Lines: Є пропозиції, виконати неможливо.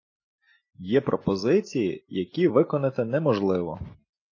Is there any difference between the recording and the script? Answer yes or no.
yes